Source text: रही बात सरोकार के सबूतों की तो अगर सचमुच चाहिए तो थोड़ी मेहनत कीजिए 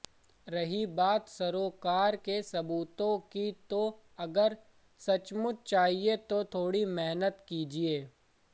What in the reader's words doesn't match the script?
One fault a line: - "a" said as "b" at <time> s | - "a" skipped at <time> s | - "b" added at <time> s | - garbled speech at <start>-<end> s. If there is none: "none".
none